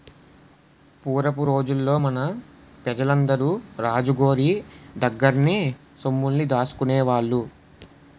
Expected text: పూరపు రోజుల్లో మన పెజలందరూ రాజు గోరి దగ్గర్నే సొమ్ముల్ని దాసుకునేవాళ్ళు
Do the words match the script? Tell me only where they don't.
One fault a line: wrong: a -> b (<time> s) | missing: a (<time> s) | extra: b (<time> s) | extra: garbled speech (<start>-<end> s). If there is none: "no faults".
no faults